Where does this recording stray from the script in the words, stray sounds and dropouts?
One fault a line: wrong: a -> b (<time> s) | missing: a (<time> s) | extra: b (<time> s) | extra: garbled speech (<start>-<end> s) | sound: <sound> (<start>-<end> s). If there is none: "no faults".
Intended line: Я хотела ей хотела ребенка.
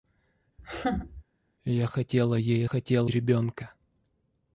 sound: laugh (0.6-1.2 s)